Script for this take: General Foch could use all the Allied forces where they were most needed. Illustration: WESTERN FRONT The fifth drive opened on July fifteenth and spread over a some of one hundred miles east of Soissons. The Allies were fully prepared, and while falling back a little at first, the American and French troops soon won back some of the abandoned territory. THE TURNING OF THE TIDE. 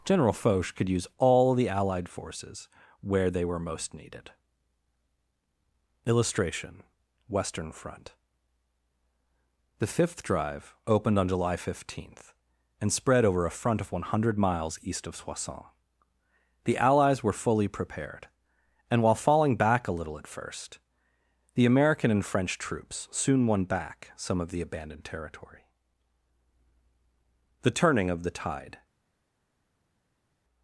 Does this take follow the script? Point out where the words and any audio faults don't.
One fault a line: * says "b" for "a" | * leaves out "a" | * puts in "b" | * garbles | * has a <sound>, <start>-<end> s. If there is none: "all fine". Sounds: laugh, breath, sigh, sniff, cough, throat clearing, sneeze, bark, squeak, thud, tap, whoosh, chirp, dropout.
* says "front" for "some"